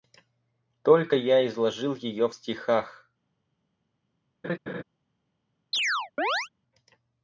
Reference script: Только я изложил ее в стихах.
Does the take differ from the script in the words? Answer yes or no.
no